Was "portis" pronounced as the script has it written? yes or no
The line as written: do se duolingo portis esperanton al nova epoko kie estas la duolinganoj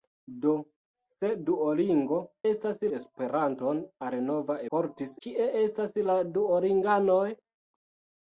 no